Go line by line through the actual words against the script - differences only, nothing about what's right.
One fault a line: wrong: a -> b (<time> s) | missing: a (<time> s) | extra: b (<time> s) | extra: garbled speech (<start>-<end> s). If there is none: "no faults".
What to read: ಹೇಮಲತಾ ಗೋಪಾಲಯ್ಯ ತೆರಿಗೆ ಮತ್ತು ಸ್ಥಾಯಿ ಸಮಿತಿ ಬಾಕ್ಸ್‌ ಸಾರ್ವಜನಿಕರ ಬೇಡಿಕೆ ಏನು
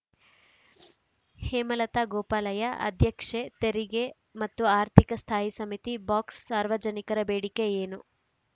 extra: ಅಧ್ಯಕ್ಷೆ (2.9 s)
extra: ಆರ್ಥಿಕ (4.7 s)